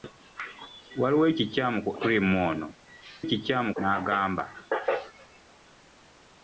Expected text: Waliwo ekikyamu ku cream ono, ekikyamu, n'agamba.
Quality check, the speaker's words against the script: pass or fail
pass